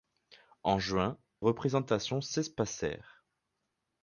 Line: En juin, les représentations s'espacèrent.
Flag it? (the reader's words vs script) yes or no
yes